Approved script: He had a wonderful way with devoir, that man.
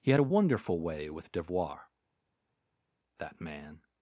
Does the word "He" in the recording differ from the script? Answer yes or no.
no